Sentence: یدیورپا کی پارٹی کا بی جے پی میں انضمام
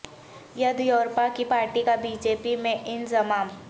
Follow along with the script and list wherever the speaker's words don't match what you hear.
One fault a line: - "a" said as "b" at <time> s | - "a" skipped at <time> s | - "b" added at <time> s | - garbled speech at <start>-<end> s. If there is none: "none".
none